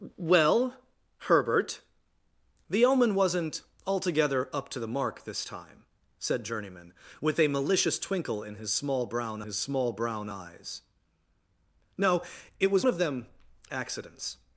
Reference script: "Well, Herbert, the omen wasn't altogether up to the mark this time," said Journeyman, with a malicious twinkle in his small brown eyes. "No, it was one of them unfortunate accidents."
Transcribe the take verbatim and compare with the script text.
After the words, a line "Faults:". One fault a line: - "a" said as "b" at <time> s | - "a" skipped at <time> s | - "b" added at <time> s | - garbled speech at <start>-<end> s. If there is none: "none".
"Well, Herbert, the omen wasn't altogether up to the mark this time," said Journeyman, with a malicious twinkle in his small brown his small brown eyes. "No, it was of them accidents."
Faults:
- "his small brown" added at 9.4 s
- "one" skipped at 12.9 s
- "unfortunate" skipped at 13.3 s